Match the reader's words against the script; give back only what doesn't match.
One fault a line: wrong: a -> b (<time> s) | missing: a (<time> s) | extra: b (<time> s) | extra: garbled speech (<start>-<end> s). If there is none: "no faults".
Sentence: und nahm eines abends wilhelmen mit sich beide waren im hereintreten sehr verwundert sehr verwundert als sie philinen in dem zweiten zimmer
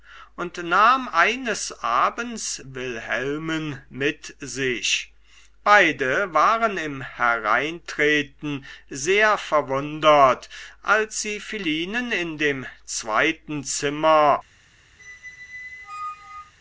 missing: sehr verwundert (10.5 s)